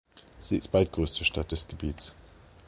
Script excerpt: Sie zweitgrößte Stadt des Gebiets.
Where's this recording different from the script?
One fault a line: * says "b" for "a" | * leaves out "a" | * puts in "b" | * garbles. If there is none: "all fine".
all fine